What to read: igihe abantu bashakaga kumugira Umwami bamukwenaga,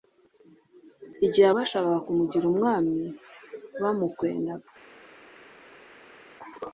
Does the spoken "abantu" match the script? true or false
false